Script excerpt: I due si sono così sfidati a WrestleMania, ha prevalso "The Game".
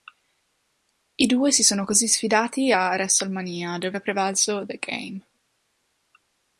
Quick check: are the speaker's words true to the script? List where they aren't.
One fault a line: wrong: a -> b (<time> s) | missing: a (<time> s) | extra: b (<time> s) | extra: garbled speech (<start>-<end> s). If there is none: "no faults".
extra: dove (3.8 s)